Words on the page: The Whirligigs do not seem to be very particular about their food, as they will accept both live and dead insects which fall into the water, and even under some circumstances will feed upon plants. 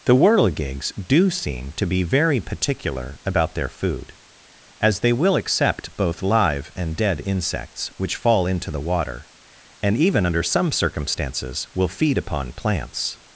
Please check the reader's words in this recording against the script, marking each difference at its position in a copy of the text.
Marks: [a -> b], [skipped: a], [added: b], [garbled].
The Whirligigs do [skipped: not] seem to be very particular about their food, as they will accept both live and dead insects which fall into the water, and even under some circumstances will feed upon plants.